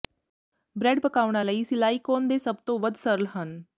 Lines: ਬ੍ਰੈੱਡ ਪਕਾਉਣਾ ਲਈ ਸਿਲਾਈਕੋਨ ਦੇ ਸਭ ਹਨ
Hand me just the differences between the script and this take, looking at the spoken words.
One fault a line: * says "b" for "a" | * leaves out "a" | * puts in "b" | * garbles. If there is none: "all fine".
* puts in "ਤੋਂ ਵੱਧ ਸਰਲ"